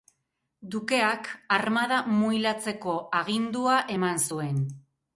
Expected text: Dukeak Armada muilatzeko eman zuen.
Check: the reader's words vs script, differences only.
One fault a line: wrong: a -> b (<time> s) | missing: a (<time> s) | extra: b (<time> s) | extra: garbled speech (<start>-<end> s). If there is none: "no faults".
extra: agindua (3.2 s)